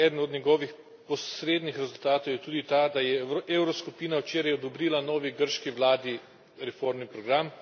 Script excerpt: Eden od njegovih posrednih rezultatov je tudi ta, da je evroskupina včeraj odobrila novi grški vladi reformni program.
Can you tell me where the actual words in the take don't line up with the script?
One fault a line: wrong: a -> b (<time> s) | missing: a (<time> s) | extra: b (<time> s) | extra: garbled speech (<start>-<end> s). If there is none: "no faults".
no faults